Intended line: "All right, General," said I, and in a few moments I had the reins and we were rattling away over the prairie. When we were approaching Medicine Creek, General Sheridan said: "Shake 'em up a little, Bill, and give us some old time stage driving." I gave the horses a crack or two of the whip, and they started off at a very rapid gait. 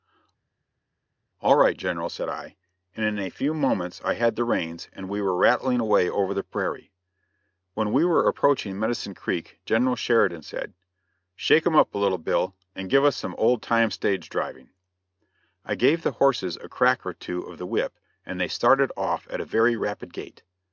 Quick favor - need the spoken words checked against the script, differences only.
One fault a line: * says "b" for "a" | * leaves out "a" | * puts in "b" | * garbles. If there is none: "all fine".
all fine